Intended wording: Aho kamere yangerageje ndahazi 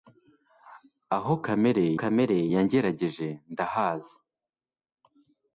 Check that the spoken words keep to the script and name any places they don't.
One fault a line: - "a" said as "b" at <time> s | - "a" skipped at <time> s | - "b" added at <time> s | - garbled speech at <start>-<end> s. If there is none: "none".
- "kamere" added at 2.0 s